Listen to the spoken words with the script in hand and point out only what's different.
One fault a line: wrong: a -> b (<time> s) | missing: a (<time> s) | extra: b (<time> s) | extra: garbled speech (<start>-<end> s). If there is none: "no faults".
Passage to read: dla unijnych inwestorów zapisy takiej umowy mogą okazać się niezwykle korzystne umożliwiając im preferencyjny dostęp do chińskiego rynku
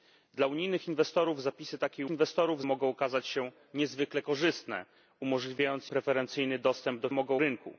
wrong: umowy -> inwestorów (2.1 s)
missing: im (5.9 s)
wrong: chińskiego -> mogą (7.1 s)